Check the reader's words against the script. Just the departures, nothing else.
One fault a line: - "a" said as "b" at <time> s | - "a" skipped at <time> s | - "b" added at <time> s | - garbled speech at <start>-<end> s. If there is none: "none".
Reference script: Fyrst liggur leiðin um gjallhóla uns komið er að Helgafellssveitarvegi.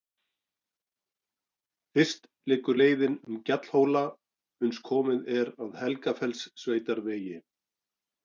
none